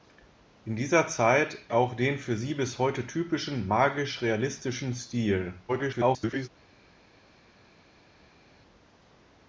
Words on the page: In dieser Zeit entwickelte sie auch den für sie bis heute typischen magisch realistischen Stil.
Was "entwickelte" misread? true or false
true